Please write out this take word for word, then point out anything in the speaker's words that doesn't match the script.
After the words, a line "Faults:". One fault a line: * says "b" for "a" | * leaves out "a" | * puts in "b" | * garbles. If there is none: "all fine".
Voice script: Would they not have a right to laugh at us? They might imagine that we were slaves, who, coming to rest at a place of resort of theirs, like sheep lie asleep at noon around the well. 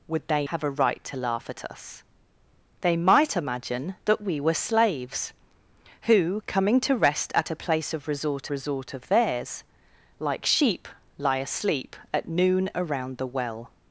Would they have a right to laugh at us? They might imagine that we were slaves, who, coming to rest at a place of resort resort of theirs, like sheep lie asleep at noon around the well.
Faults:
* leaves out "not"
* puts in "resort"